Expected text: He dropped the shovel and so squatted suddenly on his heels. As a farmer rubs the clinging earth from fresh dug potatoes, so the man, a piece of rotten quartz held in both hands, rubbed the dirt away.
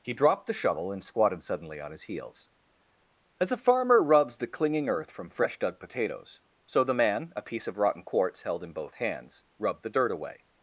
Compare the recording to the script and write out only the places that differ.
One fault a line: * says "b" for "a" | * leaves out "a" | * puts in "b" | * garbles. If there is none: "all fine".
* leaves out "so"